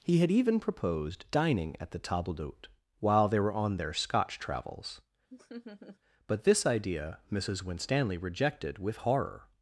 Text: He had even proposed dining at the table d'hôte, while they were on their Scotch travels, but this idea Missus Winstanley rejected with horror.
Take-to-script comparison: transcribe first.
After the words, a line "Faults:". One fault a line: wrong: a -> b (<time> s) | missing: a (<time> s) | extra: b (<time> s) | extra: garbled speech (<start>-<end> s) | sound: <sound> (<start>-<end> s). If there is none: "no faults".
He had even proposed dining at the table d'hôte, while they were on their Scotch travels, but this idea Missus Winstanley rejected with horror.
Faults:
sound: laugh (5.3-6.0 s)